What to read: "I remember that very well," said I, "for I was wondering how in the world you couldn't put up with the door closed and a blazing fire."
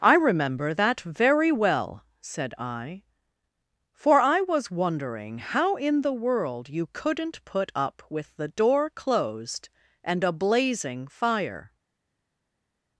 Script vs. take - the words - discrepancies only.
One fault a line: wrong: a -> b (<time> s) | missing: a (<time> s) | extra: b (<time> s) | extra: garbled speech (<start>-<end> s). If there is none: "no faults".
no faults